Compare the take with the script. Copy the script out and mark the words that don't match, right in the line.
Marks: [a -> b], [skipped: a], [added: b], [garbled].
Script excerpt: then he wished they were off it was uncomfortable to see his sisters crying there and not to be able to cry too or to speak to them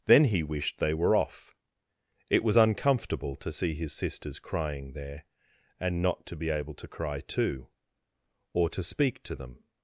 then he wished they were off it was uncomfortable to see his sisters crying there and not to be able to cry too or to speak to them